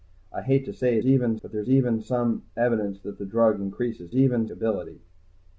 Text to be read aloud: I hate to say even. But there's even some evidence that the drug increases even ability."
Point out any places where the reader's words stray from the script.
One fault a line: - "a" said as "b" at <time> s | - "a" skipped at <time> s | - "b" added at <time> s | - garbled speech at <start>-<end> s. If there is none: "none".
none